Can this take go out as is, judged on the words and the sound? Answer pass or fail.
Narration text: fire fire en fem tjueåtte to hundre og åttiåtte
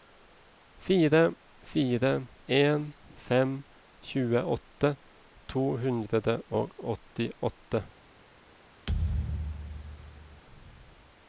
fail